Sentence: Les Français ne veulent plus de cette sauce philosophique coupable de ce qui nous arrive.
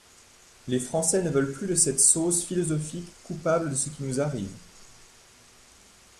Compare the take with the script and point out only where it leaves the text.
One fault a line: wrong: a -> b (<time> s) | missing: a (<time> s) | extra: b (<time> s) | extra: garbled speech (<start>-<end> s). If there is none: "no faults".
no faults